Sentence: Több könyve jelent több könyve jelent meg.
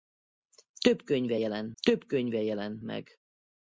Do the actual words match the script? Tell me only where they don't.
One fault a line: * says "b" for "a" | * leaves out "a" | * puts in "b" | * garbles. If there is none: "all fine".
all fine